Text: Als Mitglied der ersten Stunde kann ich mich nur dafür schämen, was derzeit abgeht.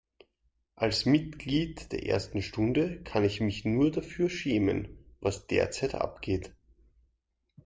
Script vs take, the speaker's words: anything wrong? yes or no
no